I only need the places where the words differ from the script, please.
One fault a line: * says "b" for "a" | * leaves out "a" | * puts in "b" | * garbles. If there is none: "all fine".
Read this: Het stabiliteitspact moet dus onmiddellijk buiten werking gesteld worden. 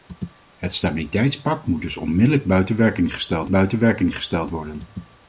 * puts in "buiten werking gesteld"